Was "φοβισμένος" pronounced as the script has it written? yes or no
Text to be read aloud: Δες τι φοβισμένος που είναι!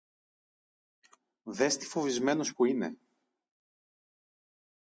yes